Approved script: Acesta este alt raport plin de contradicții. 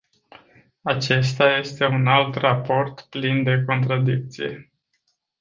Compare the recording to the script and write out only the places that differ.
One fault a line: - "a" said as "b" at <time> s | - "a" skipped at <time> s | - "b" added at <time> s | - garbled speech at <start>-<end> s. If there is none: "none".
- "un" added at 1.8 s